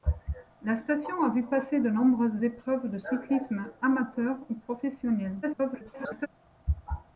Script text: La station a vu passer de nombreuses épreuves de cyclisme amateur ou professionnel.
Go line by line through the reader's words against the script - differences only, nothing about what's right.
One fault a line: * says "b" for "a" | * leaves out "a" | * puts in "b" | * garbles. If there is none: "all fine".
* garbles